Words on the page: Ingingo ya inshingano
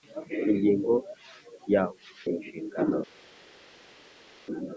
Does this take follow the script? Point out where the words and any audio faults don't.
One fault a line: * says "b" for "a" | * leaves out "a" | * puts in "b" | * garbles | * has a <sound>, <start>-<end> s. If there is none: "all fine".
all fine